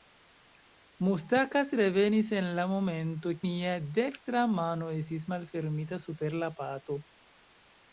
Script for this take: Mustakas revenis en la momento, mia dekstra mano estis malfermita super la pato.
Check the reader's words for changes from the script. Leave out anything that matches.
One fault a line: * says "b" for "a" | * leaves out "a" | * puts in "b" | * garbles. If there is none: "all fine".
all fine